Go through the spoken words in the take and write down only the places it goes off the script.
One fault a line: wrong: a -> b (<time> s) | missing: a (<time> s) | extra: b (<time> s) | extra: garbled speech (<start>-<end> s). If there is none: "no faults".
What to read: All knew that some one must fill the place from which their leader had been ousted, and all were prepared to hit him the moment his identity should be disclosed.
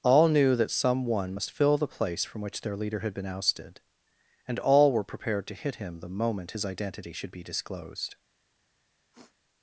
no faults